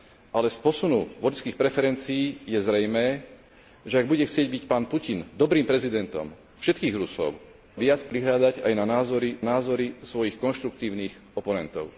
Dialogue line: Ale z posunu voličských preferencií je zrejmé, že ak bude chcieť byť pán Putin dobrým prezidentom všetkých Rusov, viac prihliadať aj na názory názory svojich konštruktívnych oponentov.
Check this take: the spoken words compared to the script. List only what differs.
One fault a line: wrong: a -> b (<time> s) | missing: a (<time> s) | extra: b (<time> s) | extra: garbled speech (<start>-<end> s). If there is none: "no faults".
no faults